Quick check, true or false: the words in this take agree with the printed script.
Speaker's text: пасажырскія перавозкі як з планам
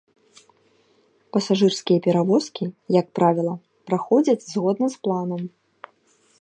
false